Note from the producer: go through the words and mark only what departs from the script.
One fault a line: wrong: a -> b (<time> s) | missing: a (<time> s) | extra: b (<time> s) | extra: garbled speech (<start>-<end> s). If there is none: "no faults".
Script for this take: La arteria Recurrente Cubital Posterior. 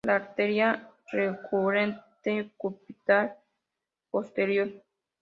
no faults